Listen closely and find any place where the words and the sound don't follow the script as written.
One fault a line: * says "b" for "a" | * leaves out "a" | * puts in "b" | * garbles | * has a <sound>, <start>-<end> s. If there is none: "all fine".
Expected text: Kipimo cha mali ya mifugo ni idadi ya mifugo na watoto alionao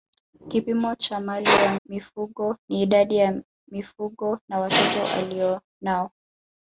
all fine